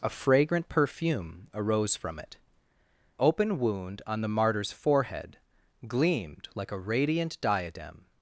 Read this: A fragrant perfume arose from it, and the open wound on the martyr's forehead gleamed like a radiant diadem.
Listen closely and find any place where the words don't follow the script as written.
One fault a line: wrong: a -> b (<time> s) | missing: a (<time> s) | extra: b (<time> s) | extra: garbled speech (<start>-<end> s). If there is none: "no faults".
missing: and the (2.4 s)